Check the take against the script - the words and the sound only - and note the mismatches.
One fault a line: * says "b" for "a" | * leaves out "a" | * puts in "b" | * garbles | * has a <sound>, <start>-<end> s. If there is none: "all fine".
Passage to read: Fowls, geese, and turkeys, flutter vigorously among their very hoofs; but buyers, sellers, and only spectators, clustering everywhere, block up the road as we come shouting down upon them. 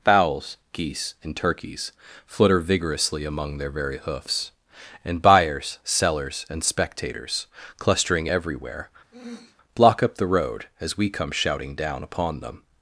* says "and" for "but"
* leaves out "only"
* has a throat clearing, 9.1-9.6 s